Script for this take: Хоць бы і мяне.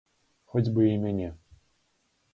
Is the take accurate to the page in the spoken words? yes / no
yes